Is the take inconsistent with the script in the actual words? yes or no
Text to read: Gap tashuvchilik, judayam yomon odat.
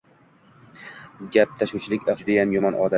no